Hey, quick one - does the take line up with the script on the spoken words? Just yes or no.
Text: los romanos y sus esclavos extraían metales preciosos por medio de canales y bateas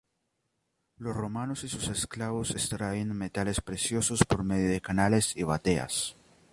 yes